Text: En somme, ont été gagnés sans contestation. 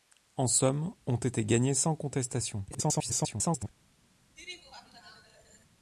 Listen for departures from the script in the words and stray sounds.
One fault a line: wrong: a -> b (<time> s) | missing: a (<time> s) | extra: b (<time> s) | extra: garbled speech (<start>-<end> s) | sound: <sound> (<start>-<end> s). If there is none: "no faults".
extra: garbled speech (2.7-3.7 s)
sound: laugh (4.4-5.7 s)